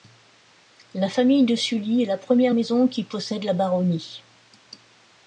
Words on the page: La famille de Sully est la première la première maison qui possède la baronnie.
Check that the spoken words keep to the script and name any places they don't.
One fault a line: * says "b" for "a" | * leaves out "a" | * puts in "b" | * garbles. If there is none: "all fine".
* leaves out "la première"